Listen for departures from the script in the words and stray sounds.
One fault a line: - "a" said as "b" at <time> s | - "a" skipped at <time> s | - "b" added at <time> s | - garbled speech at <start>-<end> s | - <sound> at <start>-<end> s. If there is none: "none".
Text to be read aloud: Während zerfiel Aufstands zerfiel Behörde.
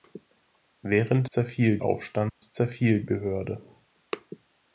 - dropout at 2.3-2.4 s